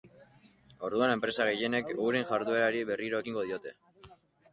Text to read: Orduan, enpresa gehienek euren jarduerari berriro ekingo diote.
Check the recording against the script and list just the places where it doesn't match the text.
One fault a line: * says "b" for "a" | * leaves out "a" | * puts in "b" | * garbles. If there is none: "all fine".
all fine